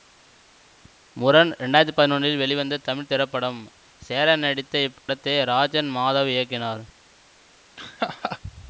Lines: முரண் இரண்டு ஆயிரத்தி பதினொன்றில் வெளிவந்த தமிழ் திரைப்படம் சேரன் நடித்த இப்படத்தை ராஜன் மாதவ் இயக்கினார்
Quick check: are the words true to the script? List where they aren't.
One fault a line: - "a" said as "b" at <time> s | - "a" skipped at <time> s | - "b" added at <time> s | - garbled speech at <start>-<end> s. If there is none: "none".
none